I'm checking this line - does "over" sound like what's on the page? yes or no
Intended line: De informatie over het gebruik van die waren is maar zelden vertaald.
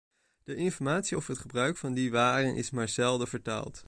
yes